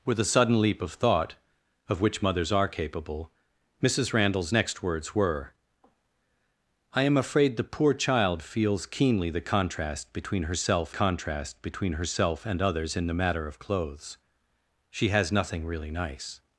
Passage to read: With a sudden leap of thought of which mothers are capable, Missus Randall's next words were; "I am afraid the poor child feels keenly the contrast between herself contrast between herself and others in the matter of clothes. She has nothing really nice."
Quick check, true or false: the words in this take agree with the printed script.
true